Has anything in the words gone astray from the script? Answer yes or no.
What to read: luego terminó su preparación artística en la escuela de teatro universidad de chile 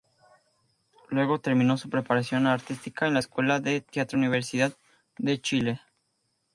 no